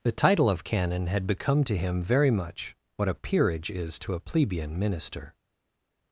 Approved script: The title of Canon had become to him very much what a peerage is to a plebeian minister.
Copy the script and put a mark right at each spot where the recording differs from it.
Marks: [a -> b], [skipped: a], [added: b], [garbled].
The title of Canon had become to him very much what a peerage is to a plebeian minister.